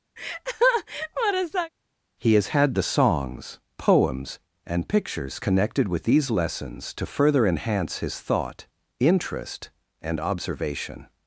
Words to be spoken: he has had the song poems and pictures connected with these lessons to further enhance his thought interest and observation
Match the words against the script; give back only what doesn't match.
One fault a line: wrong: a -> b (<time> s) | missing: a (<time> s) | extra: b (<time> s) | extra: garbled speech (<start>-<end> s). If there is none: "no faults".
wrong: song -> songs (2.8 s)